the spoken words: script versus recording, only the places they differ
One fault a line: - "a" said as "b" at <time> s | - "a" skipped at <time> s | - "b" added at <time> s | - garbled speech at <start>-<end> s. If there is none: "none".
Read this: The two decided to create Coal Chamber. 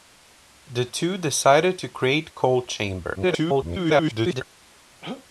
- garbled speech at 3.2-4.4 s